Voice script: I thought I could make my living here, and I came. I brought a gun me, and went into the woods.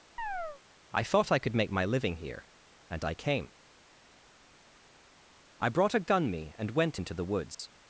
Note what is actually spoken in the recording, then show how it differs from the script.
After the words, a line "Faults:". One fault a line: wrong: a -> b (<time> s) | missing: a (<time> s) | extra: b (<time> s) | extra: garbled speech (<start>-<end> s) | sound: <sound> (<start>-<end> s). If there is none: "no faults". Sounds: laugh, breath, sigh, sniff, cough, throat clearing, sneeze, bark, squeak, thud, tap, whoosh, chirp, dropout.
I thought I could make my living here, and I came. I brought a gun me, and went into the woods.
Faults:
sound: chirp (0.2-0.6 s)
sound: dropout (7.5-7.6 s)